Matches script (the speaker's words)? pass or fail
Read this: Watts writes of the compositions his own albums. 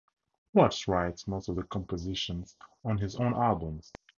fail